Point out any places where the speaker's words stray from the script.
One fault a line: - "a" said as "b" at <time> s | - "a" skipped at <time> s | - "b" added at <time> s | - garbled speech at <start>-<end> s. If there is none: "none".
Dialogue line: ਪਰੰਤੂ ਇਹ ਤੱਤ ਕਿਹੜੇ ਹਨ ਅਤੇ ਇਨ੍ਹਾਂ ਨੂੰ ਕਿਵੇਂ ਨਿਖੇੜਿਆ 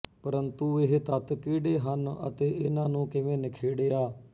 none